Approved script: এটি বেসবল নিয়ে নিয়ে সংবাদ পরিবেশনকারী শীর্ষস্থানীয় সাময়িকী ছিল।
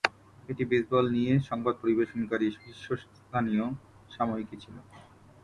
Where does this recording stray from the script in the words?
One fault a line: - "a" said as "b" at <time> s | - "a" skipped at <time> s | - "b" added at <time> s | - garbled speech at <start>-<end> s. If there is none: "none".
- "নিয়ে" skipped at 1.3 s